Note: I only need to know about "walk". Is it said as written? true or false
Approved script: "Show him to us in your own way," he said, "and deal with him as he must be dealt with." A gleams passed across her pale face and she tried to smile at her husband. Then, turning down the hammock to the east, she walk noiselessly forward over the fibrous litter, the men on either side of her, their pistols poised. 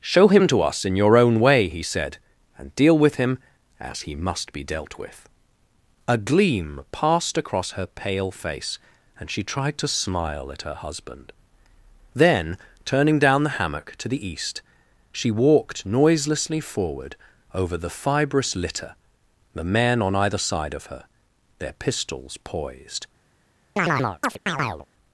false